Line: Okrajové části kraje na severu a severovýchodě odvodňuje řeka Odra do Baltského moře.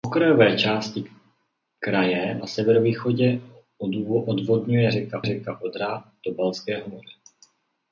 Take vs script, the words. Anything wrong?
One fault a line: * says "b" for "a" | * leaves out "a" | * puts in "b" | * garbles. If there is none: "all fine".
* leaves out "na severu"
* puts in "řeka"